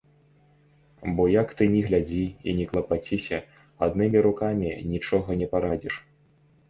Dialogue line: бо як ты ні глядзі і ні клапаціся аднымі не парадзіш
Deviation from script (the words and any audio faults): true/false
true